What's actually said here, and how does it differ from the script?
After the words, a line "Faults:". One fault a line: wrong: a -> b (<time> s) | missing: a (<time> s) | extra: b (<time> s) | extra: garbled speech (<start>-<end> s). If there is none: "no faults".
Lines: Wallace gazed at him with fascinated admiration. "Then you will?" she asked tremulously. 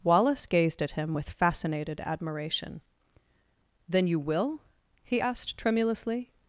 Wallace gazed at him with fascinated admiration. "Then you will?" he asked tremulously.
Faults:
wrong: she -> he (5.0 s)